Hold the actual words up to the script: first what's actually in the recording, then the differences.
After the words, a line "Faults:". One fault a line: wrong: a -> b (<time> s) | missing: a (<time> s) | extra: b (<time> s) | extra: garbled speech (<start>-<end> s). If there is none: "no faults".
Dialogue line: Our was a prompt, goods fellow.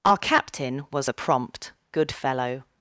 Our captain was a prompt, good fellow.
Faults:
extra: captain (0.2 s)
wrong: goods -> good (1.9 s)